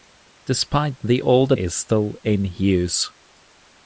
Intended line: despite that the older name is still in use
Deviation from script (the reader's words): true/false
true